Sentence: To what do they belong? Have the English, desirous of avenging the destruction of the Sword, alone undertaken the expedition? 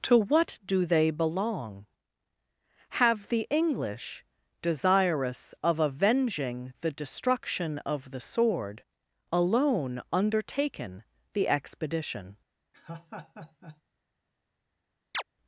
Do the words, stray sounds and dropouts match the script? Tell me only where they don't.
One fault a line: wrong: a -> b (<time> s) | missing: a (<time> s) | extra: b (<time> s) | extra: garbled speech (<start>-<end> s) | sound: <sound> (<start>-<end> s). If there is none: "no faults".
sound: laugh (12.7-13.8 s)
sound: chirp (15.1-15.2 s)